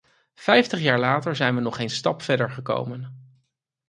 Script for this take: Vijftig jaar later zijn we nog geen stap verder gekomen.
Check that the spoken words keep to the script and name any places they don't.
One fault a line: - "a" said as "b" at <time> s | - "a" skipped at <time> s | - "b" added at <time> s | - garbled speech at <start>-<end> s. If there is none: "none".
none